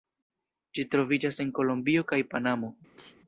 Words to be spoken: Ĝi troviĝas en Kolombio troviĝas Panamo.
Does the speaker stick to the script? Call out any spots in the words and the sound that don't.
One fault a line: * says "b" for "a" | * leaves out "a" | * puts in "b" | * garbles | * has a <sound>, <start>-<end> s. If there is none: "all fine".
* says "kaj" for "troviĝas"
* has a sneeze, 3.0-3.2 s